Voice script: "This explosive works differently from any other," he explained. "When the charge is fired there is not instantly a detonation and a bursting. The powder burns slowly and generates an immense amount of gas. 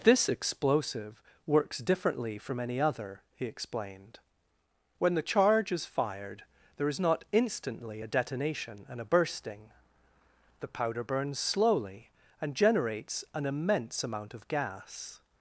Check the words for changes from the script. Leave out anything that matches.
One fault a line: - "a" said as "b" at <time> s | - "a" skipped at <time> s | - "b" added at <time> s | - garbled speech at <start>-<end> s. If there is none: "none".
none